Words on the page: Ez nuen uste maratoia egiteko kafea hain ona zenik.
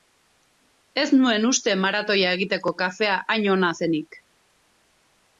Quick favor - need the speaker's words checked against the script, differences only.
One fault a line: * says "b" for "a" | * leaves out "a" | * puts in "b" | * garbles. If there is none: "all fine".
all fine